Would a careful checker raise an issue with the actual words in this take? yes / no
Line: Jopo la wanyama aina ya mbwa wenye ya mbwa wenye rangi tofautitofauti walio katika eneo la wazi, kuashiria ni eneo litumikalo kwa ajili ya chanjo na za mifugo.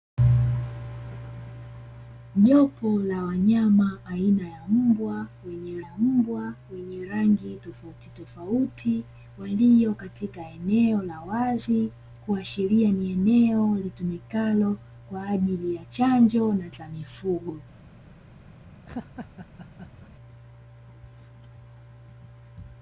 no